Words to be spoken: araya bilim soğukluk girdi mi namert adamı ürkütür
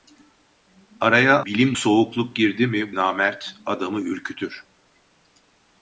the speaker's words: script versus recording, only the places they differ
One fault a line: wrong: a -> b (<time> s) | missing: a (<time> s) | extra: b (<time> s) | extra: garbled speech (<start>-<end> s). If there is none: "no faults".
no faults